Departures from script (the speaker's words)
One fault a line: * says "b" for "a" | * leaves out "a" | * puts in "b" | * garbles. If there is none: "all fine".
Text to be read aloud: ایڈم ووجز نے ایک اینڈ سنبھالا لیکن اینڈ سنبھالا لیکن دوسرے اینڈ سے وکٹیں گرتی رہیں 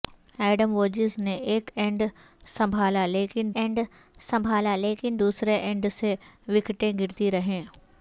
all fine